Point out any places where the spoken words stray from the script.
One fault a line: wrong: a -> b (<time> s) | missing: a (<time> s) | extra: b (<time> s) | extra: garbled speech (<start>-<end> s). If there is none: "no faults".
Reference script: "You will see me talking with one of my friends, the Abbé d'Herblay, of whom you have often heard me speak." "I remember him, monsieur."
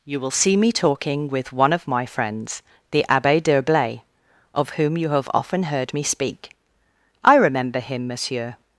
no faults